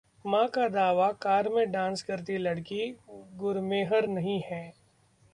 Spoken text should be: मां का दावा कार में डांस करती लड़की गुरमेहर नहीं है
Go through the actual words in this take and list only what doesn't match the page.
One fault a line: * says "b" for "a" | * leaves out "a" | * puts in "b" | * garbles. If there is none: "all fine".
all fine